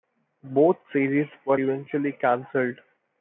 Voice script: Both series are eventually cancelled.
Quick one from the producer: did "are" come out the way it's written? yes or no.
no